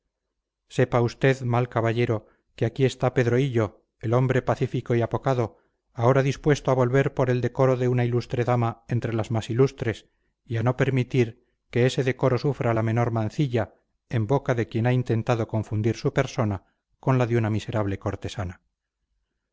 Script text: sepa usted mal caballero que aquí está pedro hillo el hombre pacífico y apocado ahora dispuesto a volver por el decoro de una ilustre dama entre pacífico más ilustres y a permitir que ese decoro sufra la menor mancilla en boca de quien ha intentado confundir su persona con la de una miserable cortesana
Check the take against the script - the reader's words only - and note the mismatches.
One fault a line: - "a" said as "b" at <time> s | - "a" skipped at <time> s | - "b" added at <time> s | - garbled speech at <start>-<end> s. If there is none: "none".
- "pacífico" said as "las" at 9.1 s
- "no" added at 10.6 s